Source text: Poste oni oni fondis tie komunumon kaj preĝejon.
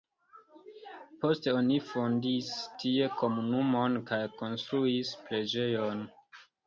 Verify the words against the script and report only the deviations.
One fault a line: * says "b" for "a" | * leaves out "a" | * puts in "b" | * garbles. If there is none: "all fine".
* leaves out "oni"
* puts in "konstruis"